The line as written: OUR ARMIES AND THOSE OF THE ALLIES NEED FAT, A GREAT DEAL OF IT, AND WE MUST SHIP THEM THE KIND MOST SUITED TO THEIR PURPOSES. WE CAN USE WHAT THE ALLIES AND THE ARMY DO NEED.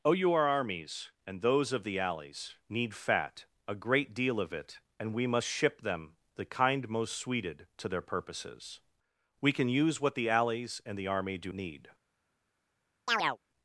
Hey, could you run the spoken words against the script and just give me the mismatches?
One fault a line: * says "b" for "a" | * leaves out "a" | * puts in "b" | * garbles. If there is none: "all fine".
all fine